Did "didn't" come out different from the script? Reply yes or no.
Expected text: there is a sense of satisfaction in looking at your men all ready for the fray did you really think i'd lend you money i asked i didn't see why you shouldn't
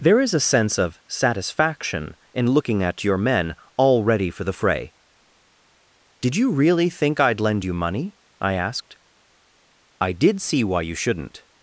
yes